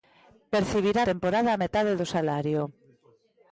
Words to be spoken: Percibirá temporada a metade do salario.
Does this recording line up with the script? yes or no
yes